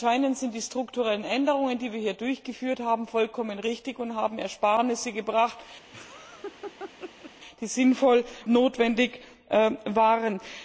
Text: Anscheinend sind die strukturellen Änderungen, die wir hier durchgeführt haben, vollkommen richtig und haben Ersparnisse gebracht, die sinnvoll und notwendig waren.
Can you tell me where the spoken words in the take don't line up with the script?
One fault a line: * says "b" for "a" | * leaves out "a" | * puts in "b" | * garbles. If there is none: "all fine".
* leaves out "und"